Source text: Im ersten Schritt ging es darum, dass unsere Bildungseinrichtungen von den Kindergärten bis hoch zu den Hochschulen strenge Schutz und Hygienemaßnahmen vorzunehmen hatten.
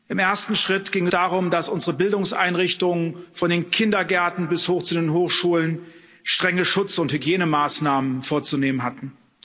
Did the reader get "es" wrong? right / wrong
wrong